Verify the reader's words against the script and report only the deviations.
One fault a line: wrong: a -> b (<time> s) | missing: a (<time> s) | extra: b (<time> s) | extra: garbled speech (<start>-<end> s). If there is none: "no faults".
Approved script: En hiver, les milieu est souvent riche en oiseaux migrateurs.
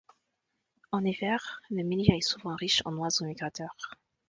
wrong: les -> le (1.7 s)